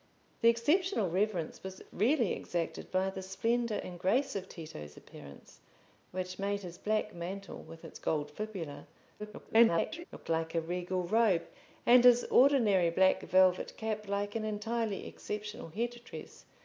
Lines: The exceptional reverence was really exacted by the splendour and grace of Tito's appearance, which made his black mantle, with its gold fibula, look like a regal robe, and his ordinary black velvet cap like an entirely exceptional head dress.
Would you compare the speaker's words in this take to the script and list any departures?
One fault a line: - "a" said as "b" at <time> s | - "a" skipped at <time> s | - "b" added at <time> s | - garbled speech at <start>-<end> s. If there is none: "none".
- garbled speech at 9.2-10.0 s